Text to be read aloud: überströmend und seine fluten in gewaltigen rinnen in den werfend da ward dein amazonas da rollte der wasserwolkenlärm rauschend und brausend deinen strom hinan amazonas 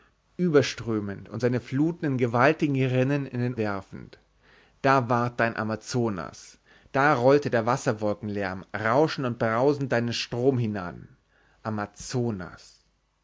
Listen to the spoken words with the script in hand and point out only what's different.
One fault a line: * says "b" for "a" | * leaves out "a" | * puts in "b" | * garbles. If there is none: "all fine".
all fine